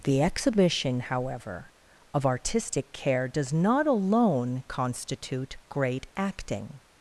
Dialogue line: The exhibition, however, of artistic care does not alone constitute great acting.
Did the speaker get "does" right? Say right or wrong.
right